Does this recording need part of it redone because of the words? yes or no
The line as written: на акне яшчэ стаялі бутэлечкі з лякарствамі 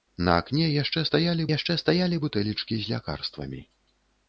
yes